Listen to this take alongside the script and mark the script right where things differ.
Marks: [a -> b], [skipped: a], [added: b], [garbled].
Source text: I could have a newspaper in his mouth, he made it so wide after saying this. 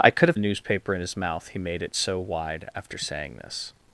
I could have a newspaper in his mouth, he made it so wide after saying this.